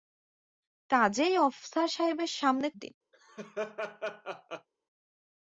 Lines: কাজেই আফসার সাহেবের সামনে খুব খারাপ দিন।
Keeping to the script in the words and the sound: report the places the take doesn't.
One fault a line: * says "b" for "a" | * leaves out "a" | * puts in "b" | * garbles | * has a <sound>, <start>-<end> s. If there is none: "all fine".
* leaves out "খুব খারাপ"
* has a laugh, 3.1-4.7 s